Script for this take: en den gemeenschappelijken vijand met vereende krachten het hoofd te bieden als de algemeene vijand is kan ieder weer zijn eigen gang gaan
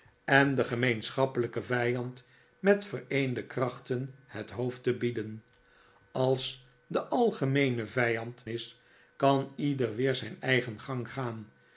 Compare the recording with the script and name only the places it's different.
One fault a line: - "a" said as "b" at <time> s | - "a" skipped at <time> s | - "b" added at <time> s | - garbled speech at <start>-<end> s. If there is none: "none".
none